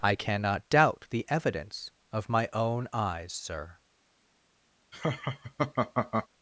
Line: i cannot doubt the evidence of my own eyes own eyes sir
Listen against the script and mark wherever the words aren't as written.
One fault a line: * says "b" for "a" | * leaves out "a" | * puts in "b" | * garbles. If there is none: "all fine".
* leaves out "own eyes"